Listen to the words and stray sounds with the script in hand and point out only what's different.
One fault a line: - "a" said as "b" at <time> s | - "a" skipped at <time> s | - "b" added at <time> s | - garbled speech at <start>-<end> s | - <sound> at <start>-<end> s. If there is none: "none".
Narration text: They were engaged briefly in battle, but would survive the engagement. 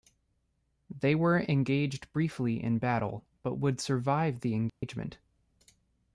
- dropout at 4.7-4.8 s